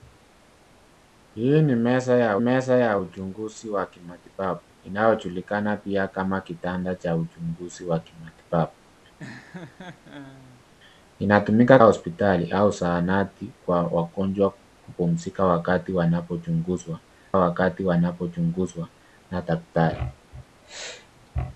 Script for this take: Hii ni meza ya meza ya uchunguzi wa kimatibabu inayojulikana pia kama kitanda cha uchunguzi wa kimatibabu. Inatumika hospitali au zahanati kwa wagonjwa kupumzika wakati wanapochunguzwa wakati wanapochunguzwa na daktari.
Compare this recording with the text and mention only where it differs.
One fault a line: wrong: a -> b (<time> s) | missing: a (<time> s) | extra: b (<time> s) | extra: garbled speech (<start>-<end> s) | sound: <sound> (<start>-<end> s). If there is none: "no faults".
sound: laugh (9.2-10.7 s)